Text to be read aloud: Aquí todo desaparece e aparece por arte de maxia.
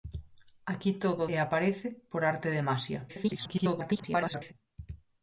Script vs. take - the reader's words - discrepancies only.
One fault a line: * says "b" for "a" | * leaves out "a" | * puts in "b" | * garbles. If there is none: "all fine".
* leaves out "desaparece"
* garbles